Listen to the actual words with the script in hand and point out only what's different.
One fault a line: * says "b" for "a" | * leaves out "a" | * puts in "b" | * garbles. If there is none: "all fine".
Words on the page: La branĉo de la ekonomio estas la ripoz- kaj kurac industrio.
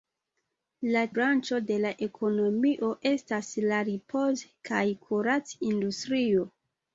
all fine